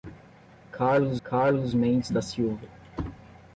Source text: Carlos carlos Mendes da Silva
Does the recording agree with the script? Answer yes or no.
yes